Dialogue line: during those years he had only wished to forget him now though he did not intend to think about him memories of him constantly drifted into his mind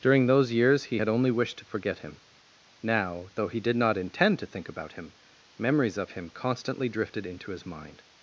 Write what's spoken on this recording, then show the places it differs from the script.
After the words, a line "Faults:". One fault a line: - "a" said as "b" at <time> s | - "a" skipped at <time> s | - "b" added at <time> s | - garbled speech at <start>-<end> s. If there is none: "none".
during those years he had only wished to forget him now though he did not intend to think about him memories of him constantly drifted into his mind
Faults:
none